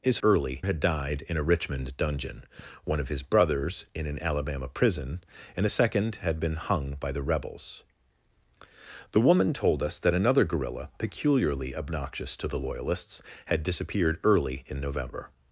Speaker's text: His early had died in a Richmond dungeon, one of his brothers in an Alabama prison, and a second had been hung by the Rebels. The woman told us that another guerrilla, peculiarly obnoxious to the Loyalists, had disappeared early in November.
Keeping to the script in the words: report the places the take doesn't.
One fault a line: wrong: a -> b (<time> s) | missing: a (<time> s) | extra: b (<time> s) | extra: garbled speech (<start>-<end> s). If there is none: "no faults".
no faults